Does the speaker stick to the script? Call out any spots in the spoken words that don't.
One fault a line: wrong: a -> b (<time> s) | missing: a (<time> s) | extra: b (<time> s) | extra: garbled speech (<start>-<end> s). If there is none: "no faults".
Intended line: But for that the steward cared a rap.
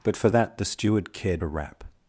no faults